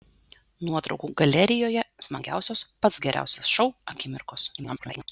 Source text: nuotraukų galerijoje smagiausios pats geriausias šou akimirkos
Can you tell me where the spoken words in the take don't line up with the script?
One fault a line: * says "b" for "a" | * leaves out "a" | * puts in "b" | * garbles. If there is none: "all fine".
* garbles